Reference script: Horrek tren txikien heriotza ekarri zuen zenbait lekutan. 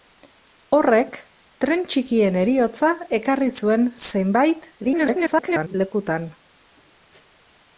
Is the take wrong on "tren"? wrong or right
right